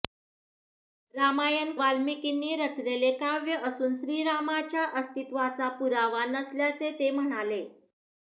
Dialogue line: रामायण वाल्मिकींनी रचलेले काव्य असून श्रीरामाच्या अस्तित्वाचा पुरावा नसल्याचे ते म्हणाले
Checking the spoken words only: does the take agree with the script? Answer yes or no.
yes